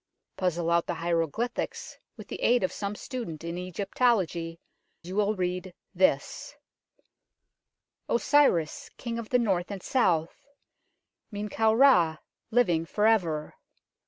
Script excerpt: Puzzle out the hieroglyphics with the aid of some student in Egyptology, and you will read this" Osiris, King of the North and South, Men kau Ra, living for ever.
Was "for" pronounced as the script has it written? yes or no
yes